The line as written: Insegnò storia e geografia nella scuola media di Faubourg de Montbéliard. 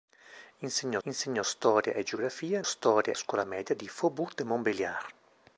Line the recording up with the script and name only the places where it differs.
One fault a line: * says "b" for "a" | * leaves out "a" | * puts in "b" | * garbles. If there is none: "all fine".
* puts in "insegnò"
* says "storia" for "nella"